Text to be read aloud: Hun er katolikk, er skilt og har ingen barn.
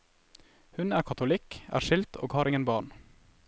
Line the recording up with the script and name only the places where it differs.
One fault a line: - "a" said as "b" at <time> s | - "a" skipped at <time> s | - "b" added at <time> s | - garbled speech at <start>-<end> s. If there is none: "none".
none